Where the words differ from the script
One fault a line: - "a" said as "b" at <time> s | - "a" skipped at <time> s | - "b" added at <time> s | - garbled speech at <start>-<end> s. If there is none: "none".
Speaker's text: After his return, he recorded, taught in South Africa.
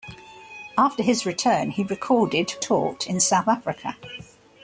none